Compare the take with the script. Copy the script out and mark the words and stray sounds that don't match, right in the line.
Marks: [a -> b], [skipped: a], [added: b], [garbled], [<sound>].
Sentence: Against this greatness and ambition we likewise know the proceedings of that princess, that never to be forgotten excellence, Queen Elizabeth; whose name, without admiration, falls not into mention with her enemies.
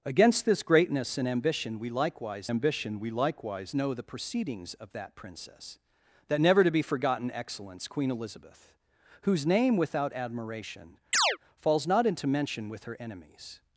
Against this greatness and ambition we likewise [added: ambition we likewise] know the proceedings of that princess, that never to be forgotten excellence, Queen Elizabeth; whose name, without admiration, [chirp] falls not into mention with her enemies.